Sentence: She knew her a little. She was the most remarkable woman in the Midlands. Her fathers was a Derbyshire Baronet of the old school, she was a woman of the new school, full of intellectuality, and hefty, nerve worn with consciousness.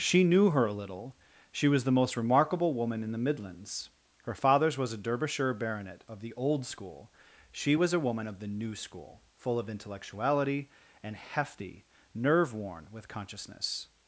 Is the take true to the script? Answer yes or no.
yes